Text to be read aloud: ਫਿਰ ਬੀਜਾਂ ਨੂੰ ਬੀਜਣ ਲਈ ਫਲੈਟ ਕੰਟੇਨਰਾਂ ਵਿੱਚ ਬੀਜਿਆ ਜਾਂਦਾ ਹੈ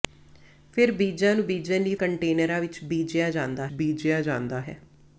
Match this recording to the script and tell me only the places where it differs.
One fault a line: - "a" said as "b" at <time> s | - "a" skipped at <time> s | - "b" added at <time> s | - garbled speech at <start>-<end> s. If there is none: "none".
- "ਫਲੈਟ" skipped at 1.9 s
- "ਬੀਜਿਆ ਜਾਂਦਾ" added at 3.7 s